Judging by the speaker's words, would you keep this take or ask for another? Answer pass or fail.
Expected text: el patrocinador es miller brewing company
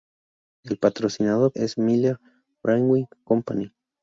pass